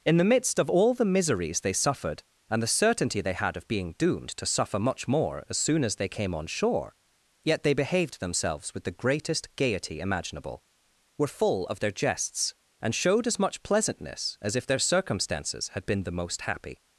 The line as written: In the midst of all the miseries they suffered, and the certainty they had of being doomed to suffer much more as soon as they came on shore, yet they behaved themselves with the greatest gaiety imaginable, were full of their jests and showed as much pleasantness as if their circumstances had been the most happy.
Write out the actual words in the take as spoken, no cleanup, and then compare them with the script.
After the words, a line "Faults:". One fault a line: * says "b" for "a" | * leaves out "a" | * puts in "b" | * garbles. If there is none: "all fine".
In the midst of all the miseries they suffered, and the certainty they had of being doomed to suffer much more as soon as they came on shore, yet they behaved themselves with the greatest gaiety imaginable, were full of their jests and showed as much pleasantness as if their circumstances had been the most happy.
Faults:
all fine